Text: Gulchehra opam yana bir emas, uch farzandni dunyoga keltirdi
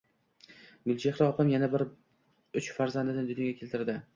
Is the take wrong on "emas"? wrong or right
wrong